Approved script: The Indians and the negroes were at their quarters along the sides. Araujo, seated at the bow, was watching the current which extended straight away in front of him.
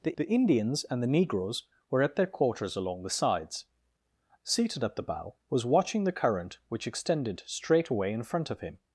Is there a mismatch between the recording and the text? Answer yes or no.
yes